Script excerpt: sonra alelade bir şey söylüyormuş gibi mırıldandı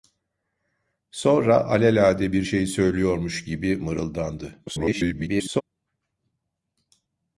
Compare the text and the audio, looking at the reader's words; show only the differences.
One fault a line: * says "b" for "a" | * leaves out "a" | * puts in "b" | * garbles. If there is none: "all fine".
* garbles